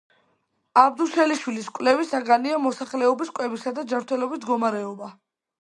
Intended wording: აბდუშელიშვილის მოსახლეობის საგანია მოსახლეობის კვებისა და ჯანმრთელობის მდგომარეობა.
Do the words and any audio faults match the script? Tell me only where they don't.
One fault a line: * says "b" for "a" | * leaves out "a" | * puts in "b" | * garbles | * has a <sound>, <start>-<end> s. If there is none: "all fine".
* says "კვლევის" for "მოსახლეობის"